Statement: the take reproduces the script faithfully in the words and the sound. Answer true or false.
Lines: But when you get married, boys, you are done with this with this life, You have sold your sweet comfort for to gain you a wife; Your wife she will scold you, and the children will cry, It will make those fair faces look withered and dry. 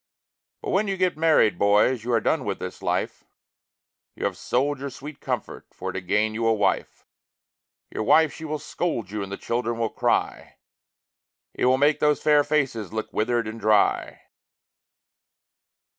false